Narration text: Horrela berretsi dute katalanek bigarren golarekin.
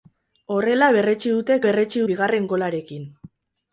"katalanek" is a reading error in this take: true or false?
true